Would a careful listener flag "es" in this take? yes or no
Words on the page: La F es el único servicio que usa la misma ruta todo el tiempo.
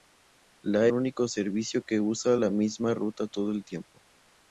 yes